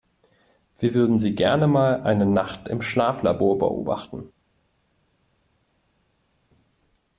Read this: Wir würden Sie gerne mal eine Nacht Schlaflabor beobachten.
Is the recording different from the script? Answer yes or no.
yes